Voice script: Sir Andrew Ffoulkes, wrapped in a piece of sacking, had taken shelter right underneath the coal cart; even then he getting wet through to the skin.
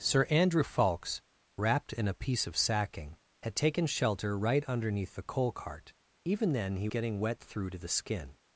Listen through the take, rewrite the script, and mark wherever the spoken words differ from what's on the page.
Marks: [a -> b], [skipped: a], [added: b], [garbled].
Sir Andrew Ffoulkes, wrapped in a piece of sacking, had taken shelter right underneath the coal cart; even then he getting wet through to the skin.